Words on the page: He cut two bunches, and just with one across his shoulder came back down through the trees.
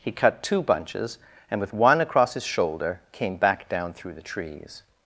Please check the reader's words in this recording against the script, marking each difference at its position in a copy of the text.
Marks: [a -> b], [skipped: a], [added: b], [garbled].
He cut two bunches, and [skipped: just] with one across his shoulder came back down through the trees.